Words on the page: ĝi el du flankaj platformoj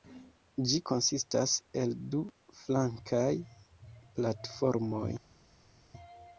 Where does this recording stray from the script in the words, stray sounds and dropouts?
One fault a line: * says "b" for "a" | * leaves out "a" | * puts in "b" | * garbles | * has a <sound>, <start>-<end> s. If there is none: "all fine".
* puts in "konsistas"